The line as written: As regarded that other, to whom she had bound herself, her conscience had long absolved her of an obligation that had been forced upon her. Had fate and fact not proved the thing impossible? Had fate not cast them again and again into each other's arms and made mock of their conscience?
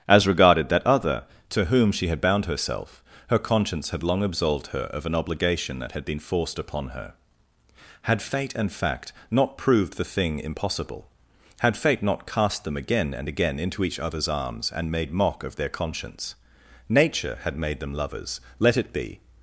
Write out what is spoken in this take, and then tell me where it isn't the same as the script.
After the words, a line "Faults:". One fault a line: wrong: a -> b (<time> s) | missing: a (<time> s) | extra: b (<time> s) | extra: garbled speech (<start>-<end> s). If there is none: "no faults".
As regarded that other, to whom she had bound herself, her conscience had long absolved her of an obligation that had been forced upon her. Had fate and fact not proved the thing impossible? Had fate not cast them again and again into each other's arms and made mock of their conscience? Nature had made them lovers, let it be
Faults:
extra: Nature had made them lovers let it be (16.9 s)